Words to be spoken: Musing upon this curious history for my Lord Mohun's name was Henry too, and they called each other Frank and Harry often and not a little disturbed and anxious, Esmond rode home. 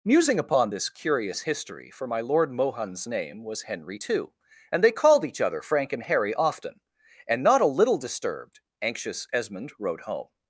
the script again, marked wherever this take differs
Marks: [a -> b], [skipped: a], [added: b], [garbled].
Musing upon this curious history for my Lord Mohun's name was Henry too, and they called each other Frank and Harry often and not a little disturbed [skipped: and] anxious, Esmond rode home.